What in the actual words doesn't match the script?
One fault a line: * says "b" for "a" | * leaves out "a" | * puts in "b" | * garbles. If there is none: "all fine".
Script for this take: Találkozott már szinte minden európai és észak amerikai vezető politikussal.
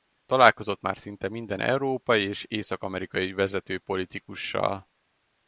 all fine